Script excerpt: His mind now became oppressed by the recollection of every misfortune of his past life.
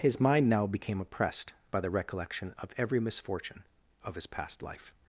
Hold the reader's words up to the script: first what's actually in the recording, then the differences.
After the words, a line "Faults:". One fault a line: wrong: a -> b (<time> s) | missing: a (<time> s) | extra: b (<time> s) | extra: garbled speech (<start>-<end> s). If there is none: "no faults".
His mind now became oppressed by the recollection of every misfortune of his past life.
Faults:
no faults